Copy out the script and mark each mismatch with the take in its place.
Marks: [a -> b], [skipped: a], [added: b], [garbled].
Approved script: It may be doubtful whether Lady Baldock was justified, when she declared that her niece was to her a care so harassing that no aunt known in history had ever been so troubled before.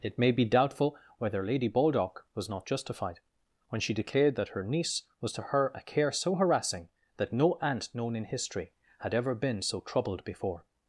It may be doubtful whether Lady Baldock was [added: not] justified, when she declared that her niece was to her a care so harassing that no aunt known in history had ever been so troubled before.